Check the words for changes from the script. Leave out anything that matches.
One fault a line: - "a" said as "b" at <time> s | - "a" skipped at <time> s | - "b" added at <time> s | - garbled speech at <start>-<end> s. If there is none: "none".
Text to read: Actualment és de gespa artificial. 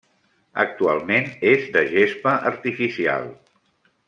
none